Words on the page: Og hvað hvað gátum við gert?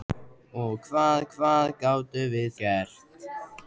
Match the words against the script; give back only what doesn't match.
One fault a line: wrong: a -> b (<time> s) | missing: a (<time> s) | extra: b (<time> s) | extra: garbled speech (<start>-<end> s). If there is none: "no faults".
no faults